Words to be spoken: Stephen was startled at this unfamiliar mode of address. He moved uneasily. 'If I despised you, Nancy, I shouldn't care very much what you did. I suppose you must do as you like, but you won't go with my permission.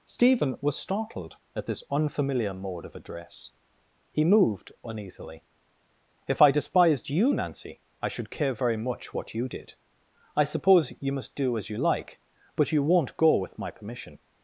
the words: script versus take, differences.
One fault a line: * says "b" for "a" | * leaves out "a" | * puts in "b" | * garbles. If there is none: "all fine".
* says "should" for "shouldn't"